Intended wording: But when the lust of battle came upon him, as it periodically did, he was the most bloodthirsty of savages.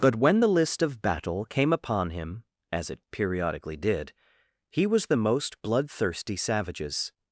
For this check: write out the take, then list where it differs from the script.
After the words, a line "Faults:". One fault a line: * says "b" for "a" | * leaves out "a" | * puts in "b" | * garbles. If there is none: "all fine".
But when the list of battle came upon him, as it periodically did, he was the most bloodthirsty savages.
Faults:
* says "list" for "lust"
* leaves out "of"